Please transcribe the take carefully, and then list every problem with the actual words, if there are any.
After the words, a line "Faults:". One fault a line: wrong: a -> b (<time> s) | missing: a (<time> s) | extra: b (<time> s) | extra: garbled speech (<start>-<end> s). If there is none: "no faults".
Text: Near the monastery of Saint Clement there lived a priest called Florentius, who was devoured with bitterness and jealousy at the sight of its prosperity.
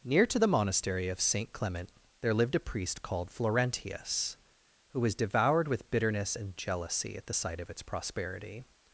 Near to the monastery of Saint Clement there lived a priest called Florentius, who was devoured with bitterness and jealousy at the sight of its prosperity.
Faults:
extra: to (0.2 s)